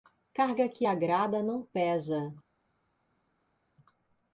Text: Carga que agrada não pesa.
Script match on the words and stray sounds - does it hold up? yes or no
yes